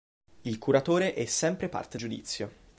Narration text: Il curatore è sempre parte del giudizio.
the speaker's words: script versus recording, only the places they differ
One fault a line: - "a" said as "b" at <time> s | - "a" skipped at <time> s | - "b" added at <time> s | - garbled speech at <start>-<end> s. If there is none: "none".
- "del" skipped at 2.0 s